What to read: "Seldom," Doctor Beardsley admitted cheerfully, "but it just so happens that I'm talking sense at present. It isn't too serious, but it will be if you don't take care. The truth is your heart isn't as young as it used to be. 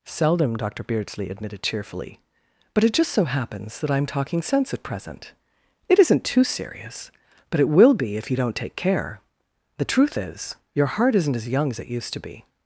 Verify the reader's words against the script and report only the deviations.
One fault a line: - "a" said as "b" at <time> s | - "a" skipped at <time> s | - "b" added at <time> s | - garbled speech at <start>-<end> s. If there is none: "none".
none